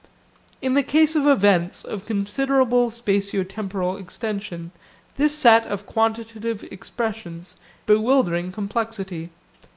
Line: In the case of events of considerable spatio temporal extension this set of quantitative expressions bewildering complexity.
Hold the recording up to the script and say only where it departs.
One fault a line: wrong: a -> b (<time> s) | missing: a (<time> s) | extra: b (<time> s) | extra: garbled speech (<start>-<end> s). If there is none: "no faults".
no faults